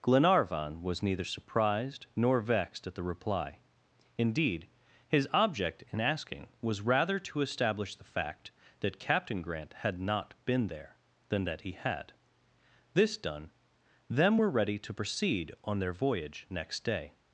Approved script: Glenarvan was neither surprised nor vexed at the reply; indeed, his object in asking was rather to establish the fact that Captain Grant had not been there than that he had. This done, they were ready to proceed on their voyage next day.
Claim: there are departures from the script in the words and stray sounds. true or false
true